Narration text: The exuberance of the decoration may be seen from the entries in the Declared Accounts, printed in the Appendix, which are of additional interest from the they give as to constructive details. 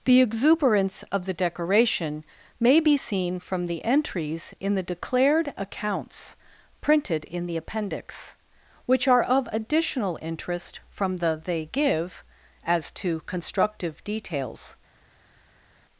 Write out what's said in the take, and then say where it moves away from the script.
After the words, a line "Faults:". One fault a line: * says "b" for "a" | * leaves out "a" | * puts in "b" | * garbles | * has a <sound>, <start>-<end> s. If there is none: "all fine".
The exuberance of the decoration may be seen from the entries in the Declared Accounts, printed in the Appendix, which are of additional interest from the they give as to constructive details.
Faults:
all fine